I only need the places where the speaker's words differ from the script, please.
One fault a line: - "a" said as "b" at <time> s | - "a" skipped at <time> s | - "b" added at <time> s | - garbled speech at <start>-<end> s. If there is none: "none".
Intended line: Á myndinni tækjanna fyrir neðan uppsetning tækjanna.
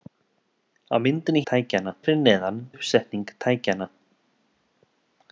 none